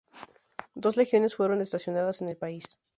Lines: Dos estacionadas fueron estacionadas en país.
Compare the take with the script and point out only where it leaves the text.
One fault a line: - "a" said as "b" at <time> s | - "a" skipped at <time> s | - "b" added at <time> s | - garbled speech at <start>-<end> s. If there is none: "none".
- "estacionadas" said as "legiones" at 1.0 s
- "el" added at 2.3 s